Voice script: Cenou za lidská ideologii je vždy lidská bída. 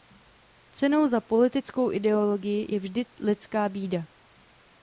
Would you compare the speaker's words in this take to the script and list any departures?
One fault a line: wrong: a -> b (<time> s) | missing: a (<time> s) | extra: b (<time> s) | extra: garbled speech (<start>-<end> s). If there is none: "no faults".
wrong: lidská -> politickou (1.2 s)